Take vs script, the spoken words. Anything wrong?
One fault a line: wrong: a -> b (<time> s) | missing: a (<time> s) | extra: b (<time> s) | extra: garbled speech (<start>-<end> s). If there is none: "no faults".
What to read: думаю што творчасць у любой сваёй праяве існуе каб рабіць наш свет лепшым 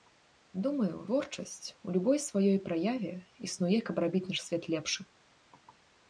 missing: што (0.9 s)